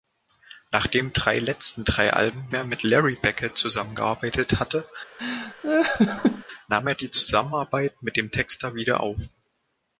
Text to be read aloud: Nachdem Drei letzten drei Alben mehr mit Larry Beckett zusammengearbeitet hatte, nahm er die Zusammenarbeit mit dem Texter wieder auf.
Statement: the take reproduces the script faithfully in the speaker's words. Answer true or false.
true